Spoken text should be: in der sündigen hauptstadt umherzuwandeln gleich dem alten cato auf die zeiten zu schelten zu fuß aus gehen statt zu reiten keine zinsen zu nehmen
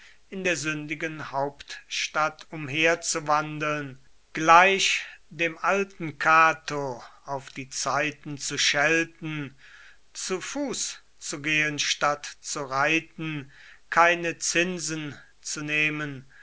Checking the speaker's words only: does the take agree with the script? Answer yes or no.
no